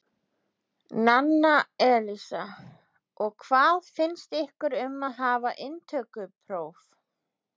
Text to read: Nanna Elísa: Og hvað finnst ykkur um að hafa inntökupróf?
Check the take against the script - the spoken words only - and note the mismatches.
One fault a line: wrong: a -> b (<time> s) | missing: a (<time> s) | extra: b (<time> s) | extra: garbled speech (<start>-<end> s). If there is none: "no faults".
no faults